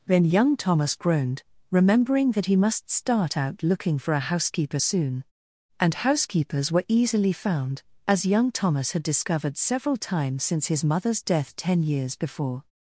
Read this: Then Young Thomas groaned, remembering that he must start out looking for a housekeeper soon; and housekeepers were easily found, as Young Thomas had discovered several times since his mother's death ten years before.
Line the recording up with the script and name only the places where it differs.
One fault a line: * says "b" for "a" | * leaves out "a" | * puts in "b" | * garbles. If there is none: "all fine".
all fine